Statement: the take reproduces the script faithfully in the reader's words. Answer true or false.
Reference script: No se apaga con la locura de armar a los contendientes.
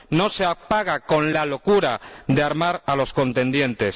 true